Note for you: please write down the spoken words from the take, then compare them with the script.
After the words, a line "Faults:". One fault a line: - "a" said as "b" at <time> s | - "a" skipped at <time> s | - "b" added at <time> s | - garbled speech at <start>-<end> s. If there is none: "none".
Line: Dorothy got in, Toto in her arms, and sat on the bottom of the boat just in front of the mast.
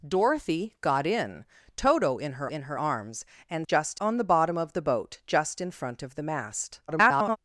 Dorothy got in, Toto in her in her arms, and just on the bottom of the boat just in front of the mast. [garbled]
Faults:
- "in her" added at 2.5 s
- "sat" said as "just" at 3.7 s
- garbled speech at 6.9-7.4 s